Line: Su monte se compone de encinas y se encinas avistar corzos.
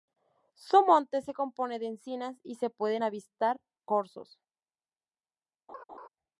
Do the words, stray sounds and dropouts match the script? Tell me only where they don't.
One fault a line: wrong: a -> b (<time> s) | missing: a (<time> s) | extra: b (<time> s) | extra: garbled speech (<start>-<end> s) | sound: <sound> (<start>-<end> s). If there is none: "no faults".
wrong: encinas -> pueden (2.7 s)
sound: laugh (5.7-6.1 s)